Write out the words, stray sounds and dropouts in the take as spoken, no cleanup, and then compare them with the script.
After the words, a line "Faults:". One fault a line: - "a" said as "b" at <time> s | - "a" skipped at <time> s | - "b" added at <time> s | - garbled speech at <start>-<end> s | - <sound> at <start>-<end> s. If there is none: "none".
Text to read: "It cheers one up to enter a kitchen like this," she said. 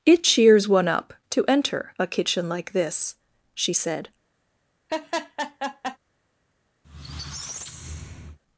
"It cheers one up to enter a kitchen like this," she said.
Faults:
- laugh at 4.9-6.0 s
- squeak at 6.8-8.4 s